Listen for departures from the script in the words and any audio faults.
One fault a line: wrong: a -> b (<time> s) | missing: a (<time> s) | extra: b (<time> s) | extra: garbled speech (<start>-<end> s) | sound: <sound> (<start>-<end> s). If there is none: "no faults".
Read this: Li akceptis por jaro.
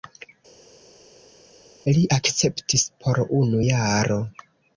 extra: unu (3.4 s)